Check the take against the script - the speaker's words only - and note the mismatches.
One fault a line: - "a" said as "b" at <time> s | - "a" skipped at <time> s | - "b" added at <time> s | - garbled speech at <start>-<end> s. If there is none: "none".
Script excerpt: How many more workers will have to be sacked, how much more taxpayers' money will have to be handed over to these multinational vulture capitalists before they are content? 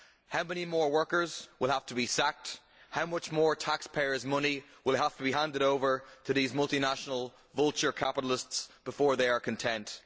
none